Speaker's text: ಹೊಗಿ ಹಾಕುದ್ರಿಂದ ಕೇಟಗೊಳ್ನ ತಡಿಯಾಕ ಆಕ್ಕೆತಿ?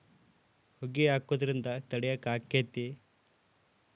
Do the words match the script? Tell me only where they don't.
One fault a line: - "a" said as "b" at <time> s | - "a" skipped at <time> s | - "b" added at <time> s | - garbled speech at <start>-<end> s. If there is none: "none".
- "ಕೇಟಗೊಳ್ನ" skipped at 1.6 s